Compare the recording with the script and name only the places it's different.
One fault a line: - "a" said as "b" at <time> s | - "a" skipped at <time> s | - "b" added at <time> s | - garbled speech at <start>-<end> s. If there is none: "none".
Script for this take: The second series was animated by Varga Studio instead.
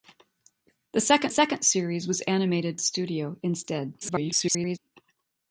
- "second" added at 1.3 s
- "by Varga" skipped at 2.8 s
- garbled speech at 4.0-4.8 s